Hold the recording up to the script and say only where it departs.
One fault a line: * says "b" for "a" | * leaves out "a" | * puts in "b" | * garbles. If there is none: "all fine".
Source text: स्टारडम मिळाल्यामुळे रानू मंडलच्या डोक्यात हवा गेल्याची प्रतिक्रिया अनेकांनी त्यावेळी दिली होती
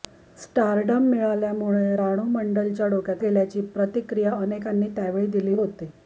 * leaves out "हवा"